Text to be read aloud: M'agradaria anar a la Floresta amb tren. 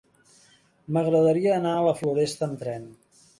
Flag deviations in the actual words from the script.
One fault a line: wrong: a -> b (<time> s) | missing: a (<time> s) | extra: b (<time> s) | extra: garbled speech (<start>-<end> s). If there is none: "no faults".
no faults